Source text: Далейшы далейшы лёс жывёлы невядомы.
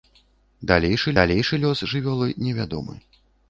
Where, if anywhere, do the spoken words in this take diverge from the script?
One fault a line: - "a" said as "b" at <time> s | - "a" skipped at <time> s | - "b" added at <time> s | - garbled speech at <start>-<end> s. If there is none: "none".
none